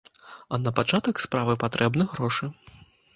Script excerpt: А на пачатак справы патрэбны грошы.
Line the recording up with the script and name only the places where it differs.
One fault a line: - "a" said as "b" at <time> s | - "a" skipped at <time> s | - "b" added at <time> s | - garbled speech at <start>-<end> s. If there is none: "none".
none